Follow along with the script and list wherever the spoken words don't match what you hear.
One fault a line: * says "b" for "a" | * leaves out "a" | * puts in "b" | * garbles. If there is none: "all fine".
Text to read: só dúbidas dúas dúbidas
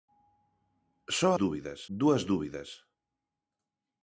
all fine